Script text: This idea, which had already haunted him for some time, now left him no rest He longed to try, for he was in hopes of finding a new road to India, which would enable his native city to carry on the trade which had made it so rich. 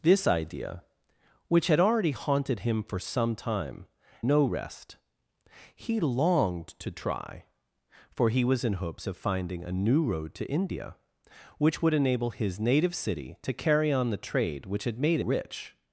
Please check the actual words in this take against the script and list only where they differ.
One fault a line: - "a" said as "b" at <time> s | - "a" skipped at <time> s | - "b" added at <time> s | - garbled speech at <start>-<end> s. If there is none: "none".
- "now left him" skipped at 3.9 s
- "it so" skipped at 15.2 s